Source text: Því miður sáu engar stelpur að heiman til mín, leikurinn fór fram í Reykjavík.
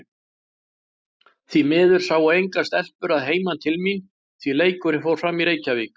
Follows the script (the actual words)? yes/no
no